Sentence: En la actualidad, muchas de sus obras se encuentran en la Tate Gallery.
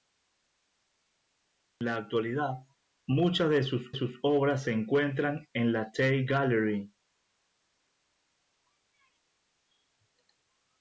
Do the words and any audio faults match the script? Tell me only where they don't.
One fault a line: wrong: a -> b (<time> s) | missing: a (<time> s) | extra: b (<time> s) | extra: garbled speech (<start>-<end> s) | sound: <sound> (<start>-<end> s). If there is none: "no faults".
extra: sus (3.9 s)